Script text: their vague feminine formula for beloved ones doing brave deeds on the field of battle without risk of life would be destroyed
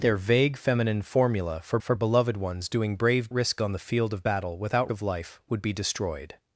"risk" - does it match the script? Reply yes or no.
no